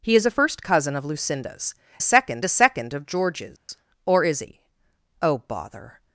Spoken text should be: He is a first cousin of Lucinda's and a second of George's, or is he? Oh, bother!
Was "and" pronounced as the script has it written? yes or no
no